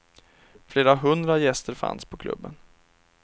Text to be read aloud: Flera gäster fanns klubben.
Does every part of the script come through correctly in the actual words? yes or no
no